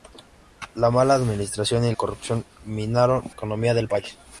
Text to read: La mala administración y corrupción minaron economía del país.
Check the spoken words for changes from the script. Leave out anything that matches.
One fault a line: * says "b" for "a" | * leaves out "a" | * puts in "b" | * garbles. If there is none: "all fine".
all fine